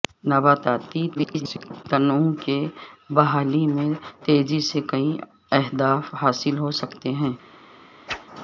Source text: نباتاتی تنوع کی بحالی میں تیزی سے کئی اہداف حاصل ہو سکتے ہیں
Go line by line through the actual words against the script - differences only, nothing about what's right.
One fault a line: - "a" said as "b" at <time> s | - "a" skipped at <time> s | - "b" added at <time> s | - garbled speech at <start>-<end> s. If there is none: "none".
- garbled speech at 1.1-1.8 s